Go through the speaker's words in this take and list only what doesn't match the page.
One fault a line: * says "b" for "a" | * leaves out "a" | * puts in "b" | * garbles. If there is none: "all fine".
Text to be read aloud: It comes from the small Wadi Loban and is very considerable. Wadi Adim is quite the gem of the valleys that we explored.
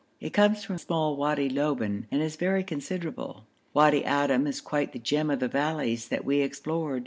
* leaves out "the"